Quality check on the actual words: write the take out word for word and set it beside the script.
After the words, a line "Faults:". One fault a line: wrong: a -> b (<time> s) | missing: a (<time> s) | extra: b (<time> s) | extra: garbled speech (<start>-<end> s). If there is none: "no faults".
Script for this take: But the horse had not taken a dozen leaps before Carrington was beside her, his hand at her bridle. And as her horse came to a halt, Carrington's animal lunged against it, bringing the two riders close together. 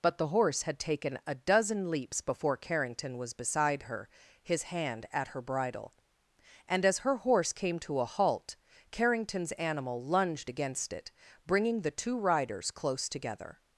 But the horse had taken a dozen leaps before Carrington was beside her, his hand at her bridle. And as her horse came to a halt, Carrington's animal lunged against it, bringing the two riders close together.
Faults:
missing: not (0.8 s)